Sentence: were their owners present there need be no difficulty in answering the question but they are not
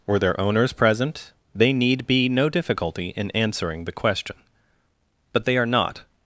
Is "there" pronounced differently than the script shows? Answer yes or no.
yes